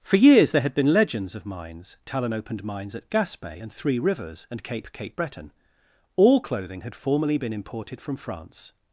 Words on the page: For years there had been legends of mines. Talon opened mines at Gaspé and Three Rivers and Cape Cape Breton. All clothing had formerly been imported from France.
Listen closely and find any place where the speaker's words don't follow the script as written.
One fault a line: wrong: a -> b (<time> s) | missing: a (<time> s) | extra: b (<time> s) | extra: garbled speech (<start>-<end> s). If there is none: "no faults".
no faults